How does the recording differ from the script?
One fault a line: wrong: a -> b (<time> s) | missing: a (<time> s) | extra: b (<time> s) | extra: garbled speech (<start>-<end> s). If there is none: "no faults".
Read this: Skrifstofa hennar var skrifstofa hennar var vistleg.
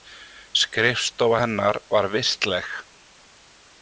missing: skrifstofa hennar var (2.1 s)